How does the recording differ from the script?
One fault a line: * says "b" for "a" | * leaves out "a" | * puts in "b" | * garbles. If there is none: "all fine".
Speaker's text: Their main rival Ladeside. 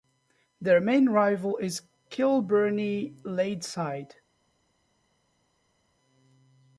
* puts in "is Kilbirnie"